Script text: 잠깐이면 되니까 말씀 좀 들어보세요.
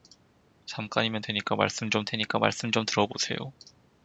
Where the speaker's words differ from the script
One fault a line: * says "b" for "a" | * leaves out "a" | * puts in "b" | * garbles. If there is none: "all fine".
* puts in "되니까 말씀 좀"